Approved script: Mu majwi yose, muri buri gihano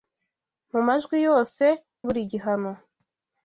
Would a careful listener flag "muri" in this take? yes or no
yes